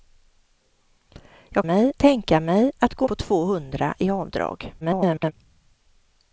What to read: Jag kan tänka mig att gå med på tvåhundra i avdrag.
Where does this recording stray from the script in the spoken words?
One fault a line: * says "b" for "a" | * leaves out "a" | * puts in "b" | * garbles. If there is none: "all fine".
* says "mig" for "kan"
* leaves out "med"
* garbles